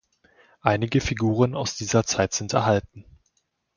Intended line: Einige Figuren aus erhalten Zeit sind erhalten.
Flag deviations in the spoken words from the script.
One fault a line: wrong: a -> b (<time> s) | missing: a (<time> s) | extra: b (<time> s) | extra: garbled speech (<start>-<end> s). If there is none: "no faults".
wrong: erhalten -> dieser (1.8 s)